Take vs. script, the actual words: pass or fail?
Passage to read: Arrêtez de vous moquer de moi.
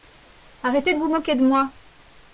pass